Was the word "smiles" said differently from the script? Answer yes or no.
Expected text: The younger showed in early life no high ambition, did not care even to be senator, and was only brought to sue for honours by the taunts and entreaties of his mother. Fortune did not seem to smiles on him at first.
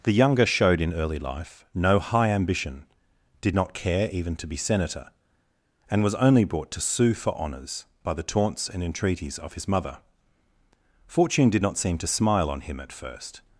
yes